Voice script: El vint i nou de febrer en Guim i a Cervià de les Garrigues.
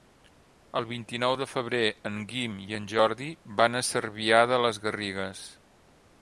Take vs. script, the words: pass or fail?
fail